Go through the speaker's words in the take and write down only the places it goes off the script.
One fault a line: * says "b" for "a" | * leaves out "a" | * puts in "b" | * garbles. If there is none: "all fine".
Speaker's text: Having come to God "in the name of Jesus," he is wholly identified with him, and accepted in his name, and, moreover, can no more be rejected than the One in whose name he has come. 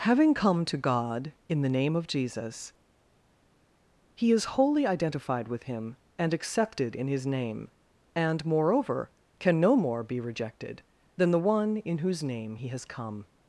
all fine